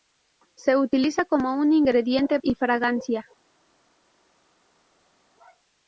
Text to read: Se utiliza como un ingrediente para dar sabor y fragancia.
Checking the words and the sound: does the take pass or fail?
fail